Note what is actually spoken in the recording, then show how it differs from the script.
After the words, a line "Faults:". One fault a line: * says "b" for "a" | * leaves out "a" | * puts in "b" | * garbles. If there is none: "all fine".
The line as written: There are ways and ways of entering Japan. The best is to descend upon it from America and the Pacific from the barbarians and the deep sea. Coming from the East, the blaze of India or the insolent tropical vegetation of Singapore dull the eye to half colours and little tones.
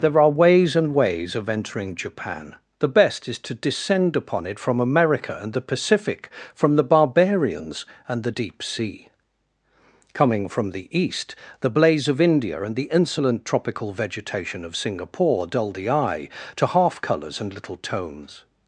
There are ways and ways of entering Japan. The best is to descend upon it from America and the Pacific from the barbarians and the deep sea. Coming from the East, the blaze of India and the insolent tropical vegetation of Singapore dull the eye to half colours and little tones.
Faults:
* says "and" for "or"